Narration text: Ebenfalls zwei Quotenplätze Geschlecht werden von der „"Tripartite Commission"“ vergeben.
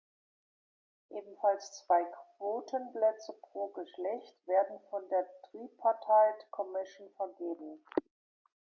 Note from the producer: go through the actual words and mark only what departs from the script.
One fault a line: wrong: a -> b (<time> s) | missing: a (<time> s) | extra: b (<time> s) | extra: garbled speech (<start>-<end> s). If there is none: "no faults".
extra: pro (3.4 s)